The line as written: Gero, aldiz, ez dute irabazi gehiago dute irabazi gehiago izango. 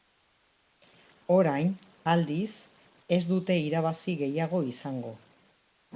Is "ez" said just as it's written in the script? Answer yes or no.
yes